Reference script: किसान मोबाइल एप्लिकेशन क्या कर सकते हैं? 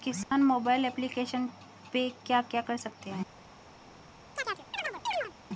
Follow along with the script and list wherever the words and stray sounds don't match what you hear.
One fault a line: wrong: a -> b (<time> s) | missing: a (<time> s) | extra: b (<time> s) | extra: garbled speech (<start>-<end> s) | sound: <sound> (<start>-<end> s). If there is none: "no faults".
sound: dropout (0.2-0.3 s)
extra: पे क्या (1.9 s)
sound: chirp (4.4-5.3 s)